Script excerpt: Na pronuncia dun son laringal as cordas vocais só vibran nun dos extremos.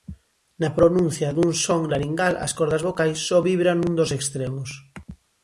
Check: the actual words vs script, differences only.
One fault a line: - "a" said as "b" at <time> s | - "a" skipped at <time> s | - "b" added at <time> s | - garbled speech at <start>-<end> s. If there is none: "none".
none